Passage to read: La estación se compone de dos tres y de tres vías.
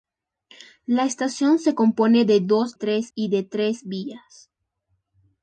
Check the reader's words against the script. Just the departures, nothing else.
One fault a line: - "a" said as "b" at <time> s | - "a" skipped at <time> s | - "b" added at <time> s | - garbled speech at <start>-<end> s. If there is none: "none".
none